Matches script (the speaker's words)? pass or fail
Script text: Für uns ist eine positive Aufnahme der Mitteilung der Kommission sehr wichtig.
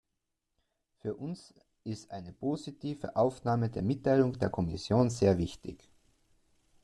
pass